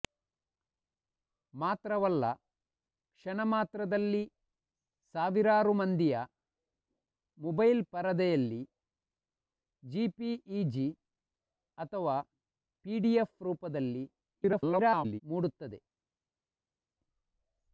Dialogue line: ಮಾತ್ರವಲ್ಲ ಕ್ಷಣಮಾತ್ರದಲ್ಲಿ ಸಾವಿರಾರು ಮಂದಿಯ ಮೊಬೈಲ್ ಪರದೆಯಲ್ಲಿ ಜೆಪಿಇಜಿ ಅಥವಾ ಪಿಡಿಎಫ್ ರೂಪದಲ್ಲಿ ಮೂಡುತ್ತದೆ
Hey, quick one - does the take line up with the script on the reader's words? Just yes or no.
no